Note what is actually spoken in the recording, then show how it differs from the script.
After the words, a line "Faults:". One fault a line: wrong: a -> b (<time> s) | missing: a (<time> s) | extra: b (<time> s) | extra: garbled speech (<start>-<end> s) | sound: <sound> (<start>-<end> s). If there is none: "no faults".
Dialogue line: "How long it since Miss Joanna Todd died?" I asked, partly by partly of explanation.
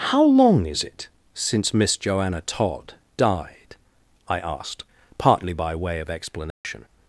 "How long is it since Miss Joanna Todd died?" I asked, partly by way of explanation.
Faults:
extra: is (0.7 s)
wrong: partly -> way (5.8 s)
sound: dropout (6.5-6.6 s)